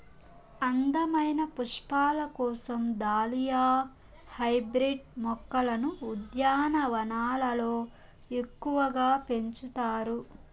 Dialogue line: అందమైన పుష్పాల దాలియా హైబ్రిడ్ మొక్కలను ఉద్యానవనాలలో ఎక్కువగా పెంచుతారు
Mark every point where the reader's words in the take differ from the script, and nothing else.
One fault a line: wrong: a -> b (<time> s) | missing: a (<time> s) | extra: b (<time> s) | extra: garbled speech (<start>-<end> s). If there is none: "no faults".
extra: కోసం (2.4 s)